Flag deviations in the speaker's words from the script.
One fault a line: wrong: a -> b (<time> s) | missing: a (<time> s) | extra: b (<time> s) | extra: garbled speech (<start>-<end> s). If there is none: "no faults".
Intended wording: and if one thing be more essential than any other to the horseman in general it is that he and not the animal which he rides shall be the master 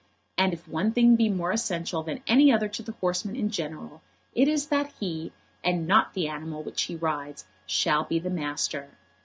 no faults